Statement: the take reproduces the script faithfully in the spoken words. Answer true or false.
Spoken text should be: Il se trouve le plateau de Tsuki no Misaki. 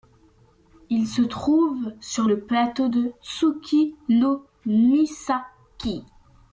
false